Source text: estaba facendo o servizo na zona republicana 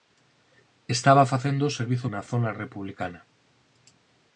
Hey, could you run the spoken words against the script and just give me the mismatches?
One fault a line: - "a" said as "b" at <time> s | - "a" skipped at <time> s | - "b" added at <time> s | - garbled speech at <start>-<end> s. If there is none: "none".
none